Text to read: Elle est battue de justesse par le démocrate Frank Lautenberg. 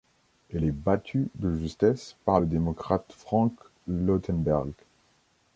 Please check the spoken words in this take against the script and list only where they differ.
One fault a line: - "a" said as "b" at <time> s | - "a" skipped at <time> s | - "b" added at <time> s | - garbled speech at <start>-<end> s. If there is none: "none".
none